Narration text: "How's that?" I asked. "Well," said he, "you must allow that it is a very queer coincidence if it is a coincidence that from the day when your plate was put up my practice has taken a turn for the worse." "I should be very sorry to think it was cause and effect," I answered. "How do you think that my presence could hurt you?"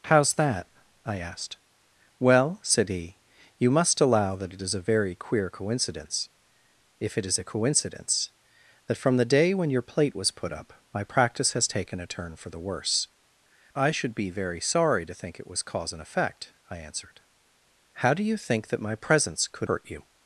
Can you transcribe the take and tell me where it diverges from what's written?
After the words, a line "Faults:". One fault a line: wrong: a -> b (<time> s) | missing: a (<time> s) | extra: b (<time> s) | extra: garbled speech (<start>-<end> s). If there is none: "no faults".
"How's that?" I asked. "Well," said he, "you must allow that it is a very queer coincidence if it is a coincidence that from the day when your plate was put up my practice has taken a turn for the worse." "I should be very sorry to think it was cause and effect," I answered. "How do you think that my presence could hurt you?"
Faults:
no faults